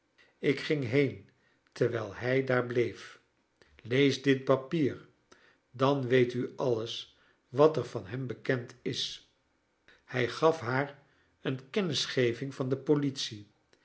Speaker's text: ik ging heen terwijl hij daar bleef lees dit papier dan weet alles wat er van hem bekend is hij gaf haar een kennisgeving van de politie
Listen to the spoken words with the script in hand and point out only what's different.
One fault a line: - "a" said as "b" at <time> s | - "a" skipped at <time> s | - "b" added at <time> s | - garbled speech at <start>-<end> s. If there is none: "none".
- "u" added at 6.3 s